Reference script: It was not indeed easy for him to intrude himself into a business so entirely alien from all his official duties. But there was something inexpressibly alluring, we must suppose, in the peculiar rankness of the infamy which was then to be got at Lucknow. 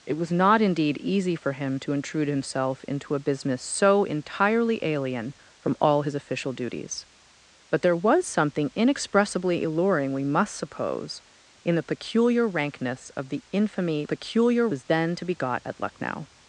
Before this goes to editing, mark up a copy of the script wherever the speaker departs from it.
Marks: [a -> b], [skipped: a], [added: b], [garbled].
It was not indeed easy for him to intrude himself into a business so entirely alien from all his official duties. But there was something inexpressibly alluring, we must suppose, in the peculiar rankness of the infamy [which -> peculiar] was then to be got at Lucknow.